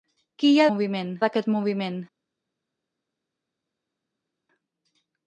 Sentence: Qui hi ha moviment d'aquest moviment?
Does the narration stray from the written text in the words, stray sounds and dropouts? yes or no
no